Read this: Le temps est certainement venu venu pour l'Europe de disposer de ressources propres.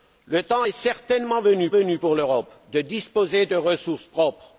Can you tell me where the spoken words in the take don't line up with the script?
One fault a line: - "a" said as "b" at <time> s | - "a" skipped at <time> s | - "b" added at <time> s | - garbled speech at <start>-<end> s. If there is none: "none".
none